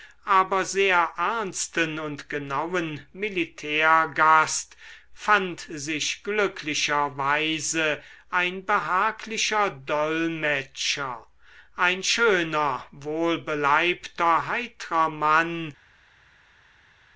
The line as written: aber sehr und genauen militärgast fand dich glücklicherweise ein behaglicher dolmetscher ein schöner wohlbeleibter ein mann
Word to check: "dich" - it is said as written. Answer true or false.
false